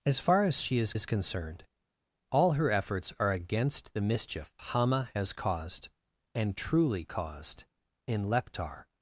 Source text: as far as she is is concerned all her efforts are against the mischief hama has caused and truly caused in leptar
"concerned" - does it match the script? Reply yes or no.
yes